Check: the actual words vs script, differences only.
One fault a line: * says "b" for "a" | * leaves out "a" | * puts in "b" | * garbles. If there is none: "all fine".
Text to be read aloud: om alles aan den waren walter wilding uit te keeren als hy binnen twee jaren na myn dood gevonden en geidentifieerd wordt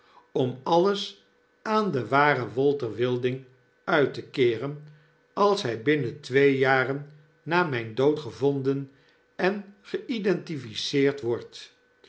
all fine